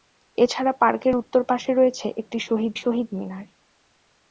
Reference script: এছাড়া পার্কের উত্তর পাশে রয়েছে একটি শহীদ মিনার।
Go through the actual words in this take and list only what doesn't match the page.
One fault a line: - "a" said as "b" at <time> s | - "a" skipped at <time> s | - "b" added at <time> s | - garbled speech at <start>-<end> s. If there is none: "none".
- "শহীদ" added at 2.8 s